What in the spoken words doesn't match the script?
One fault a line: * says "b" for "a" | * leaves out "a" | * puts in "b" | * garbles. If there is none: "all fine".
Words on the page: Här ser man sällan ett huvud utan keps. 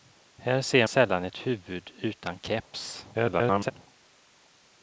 * leaves out "man"
* garbles